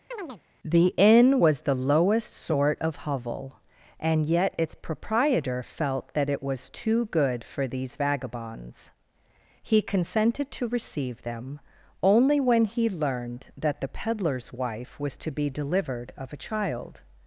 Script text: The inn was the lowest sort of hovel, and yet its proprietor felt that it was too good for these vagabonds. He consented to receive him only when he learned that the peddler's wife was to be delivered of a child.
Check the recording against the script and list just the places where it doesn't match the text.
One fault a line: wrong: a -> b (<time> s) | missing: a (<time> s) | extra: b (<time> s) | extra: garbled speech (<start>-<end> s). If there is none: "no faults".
wrong: him -> them (11.2 s)